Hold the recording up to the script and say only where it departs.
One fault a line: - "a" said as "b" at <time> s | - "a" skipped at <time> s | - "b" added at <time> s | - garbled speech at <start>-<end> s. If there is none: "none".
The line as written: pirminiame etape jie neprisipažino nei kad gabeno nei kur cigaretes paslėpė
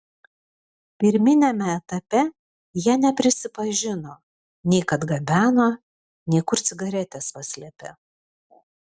none